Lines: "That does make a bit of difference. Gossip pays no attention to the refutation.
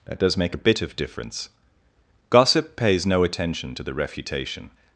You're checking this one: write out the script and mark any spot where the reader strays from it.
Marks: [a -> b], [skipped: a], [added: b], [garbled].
"That does make a bit of difference. Gossip pays no attention to the refutation.